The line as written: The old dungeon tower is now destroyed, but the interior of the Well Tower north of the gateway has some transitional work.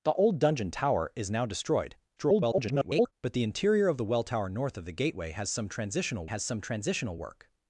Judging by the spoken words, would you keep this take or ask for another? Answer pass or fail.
fail